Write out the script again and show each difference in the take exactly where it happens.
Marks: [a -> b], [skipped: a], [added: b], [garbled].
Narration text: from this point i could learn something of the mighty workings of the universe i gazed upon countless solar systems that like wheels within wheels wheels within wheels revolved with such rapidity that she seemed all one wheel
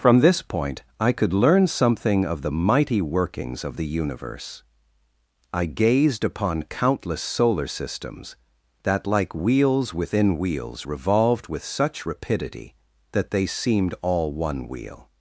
from this point i could learn something of the mighty workings of the universe i gazed upon countless solar systems that like wheels within wheels [skipped: wheels within wheels] revolved with such rapidity that [she -> they] seemed all one wheel